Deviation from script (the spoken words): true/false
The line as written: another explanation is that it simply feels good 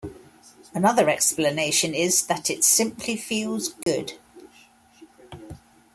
false